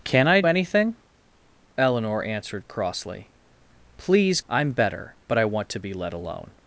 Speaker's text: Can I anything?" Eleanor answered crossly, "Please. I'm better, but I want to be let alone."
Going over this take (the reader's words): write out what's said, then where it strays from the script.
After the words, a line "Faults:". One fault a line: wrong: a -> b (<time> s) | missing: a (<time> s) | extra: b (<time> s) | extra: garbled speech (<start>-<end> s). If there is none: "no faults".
Can I anything?" Eleanor answered crossly, "Please. I'm better, but I want to be let alone."
Faults:
no faults